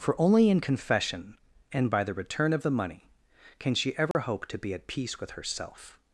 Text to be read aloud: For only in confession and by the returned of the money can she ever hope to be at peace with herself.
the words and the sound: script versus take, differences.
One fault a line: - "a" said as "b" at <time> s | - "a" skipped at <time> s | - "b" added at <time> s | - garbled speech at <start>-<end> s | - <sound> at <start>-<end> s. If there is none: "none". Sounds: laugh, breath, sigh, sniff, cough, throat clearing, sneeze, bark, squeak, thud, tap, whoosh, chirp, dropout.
- "returned" said as "return" at 2.1 s
- dropout at 4.1-4.1 s